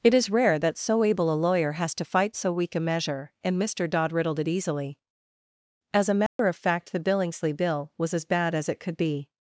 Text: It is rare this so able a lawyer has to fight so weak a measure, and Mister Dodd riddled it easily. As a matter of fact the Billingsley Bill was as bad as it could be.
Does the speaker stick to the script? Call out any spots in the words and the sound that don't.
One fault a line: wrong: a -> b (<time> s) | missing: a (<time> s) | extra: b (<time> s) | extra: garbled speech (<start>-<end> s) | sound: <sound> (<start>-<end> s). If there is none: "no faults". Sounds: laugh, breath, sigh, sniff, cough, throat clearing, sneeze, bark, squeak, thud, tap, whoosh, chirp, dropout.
wrong: this -> that (0.6 s)
sound: dropout (6.3-6.4 s)